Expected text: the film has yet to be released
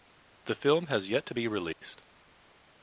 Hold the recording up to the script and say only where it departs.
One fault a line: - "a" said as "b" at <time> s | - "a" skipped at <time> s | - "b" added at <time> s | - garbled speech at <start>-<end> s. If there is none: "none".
none